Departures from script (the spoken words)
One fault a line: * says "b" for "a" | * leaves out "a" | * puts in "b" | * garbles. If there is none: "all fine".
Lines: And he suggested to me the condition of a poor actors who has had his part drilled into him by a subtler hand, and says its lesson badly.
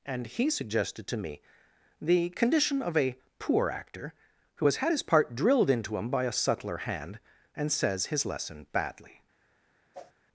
* says "actor" for "actors"
* says "his" for "its"